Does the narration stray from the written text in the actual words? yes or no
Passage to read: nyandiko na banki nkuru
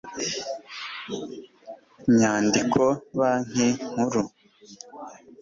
yes